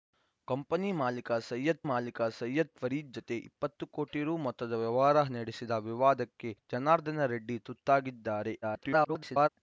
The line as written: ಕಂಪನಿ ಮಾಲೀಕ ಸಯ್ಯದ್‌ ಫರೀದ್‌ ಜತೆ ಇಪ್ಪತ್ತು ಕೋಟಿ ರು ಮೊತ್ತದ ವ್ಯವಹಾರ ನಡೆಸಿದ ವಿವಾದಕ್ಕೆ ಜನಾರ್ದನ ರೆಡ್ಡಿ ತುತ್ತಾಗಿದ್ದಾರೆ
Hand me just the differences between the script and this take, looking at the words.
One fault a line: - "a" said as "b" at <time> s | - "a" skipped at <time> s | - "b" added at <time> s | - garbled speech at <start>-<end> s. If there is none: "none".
- "ಮಾಲೀಕ ಸಯ್ಯದ್" added at 1.9 s
- garbled speech at 8.6-9.5 s